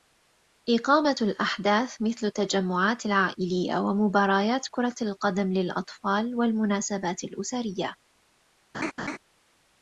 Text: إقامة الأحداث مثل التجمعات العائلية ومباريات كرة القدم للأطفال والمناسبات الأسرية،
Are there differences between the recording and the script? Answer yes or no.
no